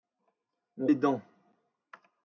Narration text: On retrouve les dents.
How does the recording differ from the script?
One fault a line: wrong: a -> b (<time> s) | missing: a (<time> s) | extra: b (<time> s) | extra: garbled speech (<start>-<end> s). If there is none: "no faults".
missing: retrouve (0.9 s)